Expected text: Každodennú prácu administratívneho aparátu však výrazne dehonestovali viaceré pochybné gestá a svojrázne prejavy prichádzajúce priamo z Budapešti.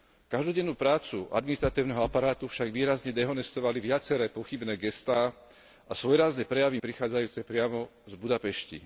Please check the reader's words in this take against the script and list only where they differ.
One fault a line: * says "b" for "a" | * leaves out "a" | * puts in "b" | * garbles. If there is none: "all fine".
all fine